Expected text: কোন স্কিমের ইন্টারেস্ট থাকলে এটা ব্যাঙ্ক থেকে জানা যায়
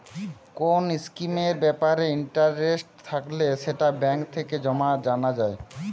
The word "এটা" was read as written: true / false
false